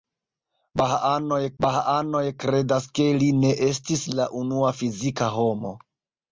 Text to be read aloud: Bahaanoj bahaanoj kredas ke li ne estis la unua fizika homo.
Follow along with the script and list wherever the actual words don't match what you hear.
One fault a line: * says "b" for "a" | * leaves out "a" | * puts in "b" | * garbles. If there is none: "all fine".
all fine